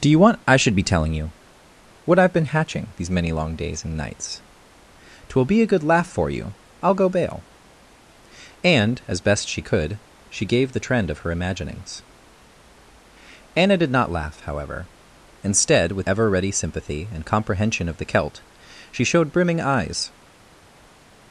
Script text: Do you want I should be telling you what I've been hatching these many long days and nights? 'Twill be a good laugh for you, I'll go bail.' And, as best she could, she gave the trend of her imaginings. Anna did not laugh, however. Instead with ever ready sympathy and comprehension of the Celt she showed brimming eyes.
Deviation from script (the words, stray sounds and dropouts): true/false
false